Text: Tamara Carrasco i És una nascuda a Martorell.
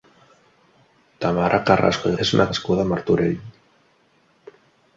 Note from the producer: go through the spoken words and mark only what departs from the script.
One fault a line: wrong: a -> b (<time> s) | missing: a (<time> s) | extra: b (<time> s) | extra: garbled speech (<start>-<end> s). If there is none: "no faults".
no faults